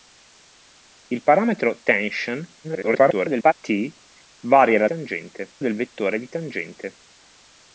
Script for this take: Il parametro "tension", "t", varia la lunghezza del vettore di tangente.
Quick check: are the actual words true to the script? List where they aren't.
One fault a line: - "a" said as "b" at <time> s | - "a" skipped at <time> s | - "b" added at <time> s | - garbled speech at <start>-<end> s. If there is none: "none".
- garbled speech at 2.6-3.5 s
- "lunghezza" said as "tangente" at 4.8 s